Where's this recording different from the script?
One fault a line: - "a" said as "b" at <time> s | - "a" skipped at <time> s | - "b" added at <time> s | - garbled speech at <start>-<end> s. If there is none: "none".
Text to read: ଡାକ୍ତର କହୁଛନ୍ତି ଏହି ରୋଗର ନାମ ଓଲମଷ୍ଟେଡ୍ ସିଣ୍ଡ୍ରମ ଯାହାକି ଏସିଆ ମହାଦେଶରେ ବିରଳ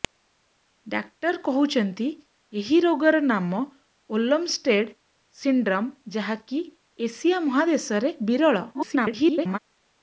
- garbled speech at 8.7-9.6 s